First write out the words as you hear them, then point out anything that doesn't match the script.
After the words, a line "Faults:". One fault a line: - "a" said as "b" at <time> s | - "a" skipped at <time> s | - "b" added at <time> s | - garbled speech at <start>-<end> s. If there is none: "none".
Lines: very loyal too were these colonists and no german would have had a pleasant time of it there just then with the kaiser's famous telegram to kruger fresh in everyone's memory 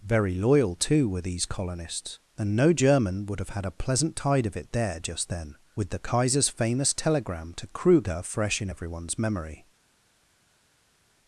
very loyal too were these colonists and no german would have had a pleasant tide of it there just then with the kaiser's famous telegram to kruger fresh in everyone's memory
Faults:
- "time" said as "tide" at 4.2 s